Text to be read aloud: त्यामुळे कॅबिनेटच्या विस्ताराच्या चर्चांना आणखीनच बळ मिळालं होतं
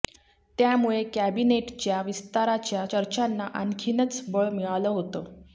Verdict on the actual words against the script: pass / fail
pass